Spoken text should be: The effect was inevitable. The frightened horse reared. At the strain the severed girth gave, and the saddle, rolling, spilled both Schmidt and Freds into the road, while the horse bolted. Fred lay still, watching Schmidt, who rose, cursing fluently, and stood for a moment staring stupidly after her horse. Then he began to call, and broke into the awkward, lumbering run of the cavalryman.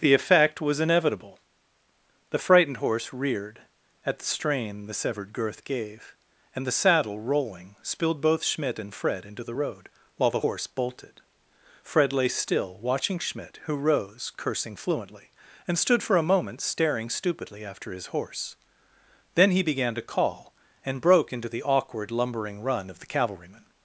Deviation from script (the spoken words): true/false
true